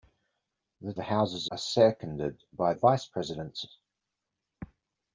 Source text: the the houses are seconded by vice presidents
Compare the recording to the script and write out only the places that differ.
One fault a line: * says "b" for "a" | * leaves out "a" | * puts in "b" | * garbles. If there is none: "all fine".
all fine